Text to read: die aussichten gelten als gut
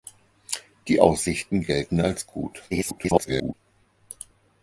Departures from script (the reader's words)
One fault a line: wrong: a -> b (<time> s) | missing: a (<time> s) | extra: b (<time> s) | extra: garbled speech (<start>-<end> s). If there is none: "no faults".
extra: garbled speech (2.7-3.5 s)